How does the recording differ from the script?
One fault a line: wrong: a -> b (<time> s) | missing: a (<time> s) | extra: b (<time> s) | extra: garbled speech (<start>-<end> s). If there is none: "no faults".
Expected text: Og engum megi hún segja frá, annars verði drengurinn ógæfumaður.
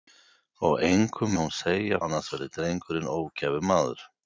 missing: megi (1.4 s)
missing: frá (2.0 s)